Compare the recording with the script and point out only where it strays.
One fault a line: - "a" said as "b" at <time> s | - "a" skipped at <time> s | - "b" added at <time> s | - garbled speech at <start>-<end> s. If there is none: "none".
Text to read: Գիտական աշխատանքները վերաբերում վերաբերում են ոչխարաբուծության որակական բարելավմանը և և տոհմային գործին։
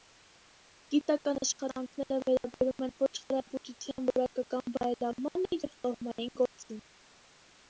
- "վերաբերում" skipped at 2.9 s
- "և" skipped at 5.8 s